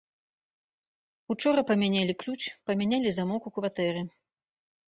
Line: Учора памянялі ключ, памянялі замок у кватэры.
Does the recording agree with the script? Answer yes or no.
yes